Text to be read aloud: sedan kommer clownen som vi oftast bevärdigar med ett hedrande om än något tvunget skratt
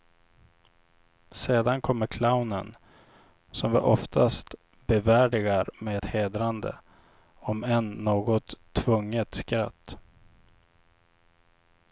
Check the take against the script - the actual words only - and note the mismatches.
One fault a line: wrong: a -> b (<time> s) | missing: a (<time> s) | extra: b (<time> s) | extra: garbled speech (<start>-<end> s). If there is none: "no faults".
no faults